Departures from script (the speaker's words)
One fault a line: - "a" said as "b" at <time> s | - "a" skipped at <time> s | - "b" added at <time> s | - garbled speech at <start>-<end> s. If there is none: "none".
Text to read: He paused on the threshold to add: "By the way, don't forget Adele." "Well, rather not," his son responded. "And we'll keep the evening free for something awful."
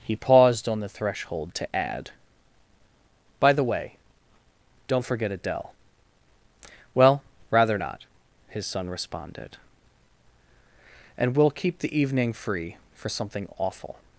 none